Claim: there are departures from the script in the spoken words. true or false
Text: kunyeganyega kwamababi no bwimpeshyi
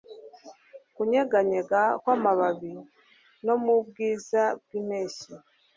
true